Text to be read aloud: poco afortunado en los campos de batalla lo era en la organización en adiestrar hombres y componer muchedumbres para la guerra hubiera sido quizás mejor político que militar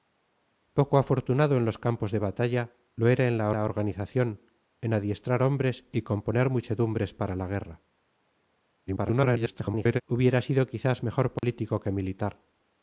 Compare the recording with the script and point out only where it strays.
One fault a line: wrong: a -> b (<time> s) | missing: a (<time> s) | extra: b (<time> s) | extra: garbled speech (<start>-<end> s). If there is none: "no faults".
extra: la (3.5 s)
extra: garbled speech (8.9-10.0 s)